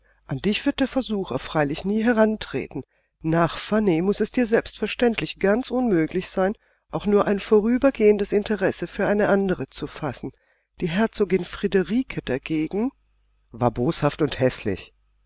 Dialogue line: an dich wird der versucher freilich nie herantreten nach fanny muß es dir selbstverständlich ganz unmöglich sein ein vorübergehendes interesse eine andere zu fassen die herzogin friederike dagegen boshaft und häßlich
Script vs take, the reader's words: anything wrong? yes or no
yes